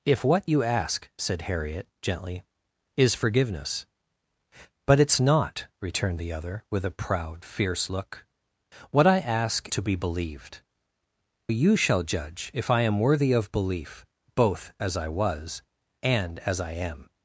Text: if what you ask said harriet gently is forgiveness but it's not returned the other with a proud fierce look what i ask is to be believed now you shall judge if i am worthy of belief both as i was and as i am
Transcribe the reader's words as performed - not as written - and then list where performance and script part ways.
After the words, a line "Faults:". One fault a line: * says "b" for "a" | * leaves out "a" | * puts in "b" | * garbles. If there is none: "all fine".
if what you ask said harriet gently is forgiveness but it's not returned the other with a proud fierce look what i ask to be believed you shall judge if i am worthy of belief both as i was and as i am
Faults:
* leaves out "is"
* leaves out "now"